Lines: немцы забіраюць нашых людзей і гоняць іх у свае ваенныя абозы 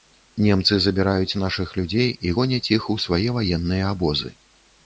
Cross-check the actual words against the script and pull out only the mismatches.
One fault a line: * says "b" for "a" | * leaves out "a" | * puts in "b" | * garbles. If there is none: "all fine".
all fine